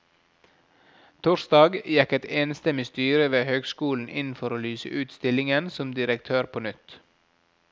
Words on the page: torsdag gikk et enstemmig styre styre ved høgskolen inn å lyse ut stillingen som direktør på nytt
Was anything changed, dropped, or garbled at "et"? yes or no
no